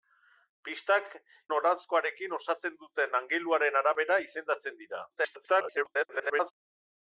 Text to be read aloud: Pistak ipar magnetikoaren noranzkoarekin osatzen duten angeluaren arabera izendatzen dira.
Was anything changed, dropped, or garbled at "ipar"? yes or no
yes